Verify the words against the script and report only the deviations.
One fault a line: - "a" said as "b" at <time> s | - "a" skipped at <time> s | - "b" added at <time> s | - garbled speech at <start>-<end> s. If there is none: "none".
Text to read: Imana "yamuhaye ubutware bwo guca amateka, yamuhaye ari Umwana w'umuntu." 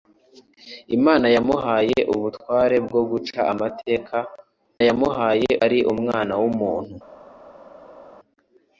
none